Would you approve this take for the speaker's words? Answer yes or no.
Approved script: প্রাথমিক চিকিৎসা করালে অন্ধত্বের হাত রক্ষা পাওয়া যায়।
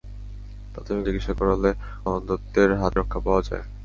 yes